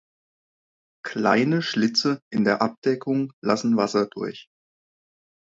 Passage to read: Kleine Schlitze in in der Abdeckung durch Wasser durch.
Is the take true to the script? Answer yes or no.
no